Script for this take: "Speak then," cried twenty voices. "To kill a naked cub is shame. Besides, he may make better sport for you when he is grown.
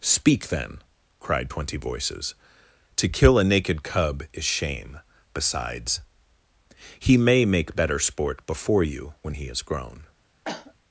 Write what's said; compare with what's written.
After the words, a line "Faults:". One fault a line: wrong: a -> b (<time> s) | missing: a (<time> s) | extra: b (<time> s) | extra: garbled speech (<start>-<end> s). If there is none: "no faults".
"Speak then," cried twenty voices. "To kill a naked cub is shame. Besides, he may make better sport before you when he is grown.
Faults:
wrong: for -> before (8.5 s)